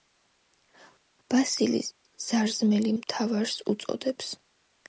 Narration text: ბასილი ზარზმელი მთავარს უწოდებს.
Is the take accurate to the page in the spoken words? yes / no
yes